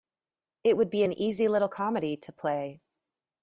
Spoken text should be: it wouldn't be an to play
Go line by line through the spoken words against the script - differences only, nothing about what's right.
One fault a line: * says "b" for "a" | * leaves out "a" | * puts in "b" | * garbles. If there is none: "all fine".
* says "would" for "wouldn't"
* puts in "easy little comedy"